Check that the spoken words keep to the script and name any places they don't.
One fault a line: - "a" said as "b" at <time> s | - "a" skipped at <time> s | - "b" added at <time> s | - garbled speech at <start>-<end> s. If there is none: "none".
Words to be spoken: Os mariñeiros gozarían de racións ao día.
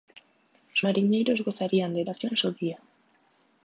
none